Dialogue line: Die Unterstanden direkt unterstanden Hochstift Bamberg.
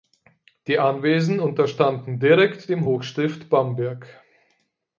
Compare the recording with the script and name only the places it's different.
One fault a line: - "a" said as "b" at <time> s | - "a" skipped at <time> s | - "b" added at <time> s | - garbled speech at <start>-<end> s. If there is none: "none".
- "Anwesen" added at 0.8 s
- "unterstanden" said as "dem" at 2.7 s